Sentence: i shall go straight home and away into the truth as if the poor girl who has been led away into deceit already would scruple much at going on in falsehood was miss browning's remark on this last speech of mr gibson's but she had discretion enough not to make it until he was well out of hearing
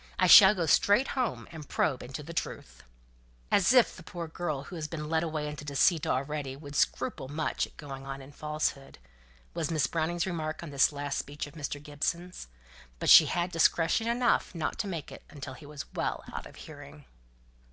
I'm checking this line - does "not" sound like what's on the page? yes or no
yes